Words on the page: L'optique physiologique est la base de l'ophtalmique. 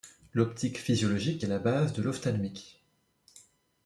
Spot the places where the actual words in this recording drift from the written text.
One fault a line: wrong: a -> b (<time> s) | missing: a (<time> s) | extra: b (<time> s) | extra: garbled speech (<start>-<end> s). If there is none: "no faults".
no faults